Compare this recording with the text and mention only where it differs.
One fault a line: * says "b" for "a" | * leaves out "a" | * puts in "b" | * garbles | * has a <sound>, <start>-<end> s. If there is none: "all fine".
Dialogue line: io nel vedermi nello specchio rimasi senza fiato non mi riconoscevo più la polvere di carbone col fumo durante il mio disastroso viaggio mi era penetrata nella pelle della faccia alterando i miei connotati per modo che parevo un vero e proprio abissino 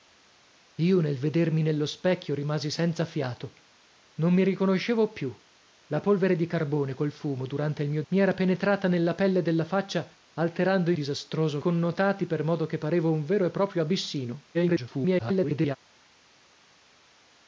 * leaves out "disastroso viaggio"
* says "disastroso" for "miei"
* garbles